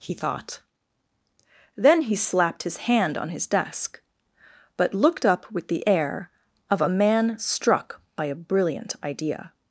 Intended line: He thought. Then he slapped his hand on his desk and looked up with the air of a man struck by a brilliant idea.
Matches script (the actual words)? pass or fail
fail